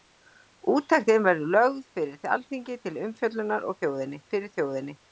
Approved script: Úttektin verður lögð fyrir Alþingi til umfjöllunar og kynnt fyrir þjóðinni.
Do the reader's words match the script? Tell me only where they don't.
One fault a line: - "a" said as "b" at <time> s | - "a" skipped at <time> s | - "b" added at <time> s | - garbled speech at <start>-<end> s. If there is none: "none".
- "kynnt" said as "þjóðinni" at 3.8 s